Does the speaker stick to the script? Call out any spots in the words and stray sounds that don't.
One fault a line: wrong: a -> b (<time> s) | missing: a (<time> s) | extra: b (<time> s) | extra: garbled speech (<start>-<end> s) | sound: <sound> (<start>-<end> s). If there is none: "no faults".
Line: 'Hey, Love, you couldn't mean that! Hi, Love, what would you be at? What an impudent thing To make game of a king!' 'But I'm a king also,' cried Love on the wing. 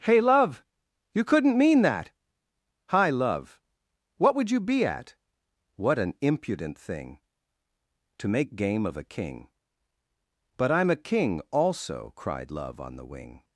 no faults